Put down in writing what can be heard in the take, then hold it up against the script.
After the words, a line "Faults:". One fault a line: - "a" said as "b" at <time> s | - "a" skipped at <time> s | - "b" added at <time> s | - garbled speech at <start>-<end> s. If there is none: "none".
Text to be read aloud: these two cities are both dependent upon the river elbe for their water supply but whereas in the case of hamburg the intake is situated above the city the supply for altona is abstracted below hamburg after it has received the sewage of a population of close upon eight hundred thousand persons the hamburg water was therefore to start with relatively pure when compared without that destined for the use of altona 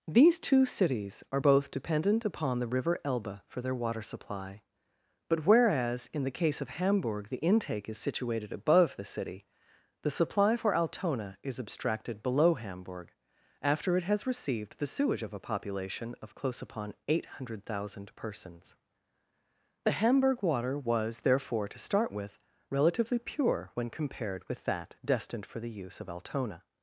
these two cities are both dependent upon the river elbe for their water supply but whereas in the case of hamburg the intake is situated above the city the supply for altona is abstracted below hamburg after it has received the sewage of a population of close upon eight hundred thousand persons the hamburg water was therefore to start with relatively pure when compared with that destined for the use of altona
Faults:
- "without" said as "with" at 24.5 s